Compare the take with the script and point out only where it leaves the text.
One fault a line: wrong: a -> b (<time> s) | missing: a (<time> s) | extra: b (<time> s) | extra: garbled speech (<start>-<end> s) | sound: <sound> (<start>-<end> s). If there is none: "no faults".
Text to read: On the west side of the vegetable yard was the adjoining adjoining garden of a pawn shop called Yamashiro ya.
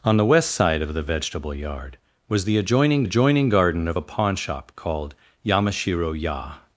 no faults